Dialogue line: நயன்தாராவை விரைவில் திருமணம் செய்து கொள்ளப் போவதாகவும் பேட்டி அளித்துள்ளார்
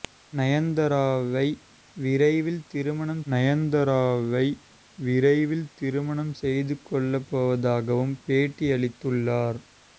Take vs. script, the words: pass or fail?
fail